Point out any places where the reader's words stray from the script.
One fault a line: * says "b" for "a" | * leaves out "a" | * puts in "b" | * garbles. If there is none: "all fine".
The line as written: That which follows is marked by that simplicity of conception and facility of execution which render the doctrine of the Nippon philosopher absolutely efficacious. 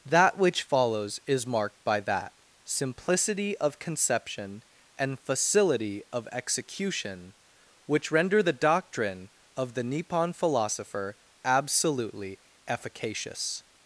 all fine